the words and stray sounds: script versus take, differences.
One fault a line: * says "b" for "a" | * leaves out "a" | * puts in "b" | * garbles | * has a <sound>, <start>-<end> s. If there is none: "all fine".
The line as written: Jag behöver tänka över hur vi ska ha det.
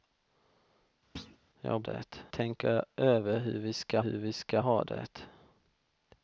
* has a thud, 1.2-1.4 s
* says "det" for "behöver"
* puts in "hur vi ska"